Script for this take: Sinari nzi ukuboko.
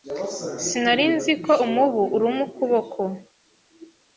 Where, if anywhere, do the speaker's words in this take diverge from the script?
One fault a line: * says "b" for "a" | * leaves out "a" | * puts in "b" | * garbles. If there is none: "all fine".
* puts in "ko umubu uruma"